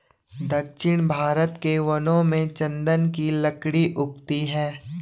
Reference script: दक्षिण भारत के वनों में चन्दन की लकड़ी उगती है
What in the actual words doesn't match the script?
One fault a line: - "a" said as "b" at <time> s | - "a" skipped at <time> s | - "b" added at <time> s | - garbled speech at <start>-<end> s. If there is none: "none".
none